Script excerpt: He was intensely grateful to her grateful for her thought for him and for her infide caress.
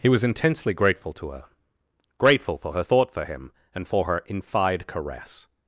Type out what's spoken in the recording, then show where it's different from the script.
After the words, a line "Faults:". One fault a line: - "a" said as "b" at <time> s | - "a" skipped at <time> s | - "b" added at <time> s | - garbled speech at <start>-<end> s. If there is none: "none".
He was intensely grateful to her grateful for her thought for him and for her infide caress.
Faults:
none